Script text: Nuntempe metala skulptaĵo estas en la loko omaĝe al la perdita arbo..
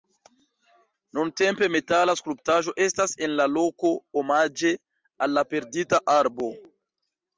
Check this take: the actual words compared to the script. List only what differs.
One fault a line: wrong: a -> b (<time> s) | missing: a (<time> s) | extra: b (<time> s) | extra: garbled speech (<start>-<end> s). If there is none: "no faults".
no faults